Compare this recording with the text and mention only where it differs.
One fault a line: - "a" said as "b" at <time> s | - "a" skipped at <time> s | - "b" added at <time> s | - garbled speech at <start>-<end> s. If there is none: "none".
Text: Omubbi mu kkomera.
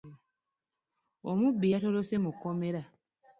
- "yatolose" added at 1.7 s